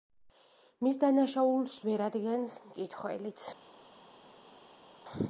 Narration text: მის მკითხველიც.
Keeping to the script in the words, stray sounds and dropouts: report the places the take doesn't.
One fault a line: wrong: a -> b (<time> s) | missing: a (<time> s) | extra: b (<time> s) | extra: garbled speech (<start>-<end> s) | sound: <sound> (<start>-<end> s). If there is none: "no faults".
extra: დანაშაულს ვერ ადგენს (1.0 s)